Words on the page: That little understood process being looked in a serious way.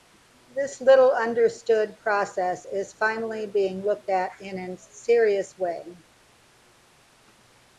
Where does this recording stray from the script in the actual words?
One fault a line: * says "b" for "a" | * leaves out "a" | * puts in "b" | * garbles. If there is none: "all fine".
* says "This" for "That"
* puts in "is finally"
* puts in "at"